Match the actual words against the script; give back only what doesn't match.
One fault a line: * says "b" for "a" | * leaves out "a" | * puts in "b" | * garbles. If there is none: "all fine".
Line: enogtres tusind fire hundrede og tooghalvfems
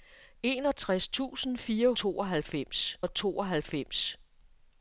* says "tooghalvfems" for "hundrede"